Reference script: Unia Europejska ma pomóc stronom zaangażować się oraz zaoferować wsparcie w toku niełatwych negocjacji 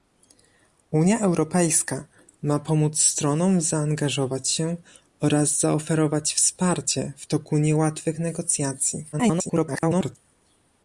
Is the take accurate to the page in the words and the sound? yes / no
no